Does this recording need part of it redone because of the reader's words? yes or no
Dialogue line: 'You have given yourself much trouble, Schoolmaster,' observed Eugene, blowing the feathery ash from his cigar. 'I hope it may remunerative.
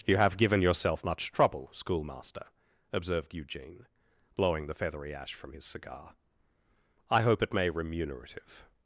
no